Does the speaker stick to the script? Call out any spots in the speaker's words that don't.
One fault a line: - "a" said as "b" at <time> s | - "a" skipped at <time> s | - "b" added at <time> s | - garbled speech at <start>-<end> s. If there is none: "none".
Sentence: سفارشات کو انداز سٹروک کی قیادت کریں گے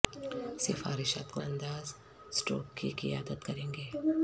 none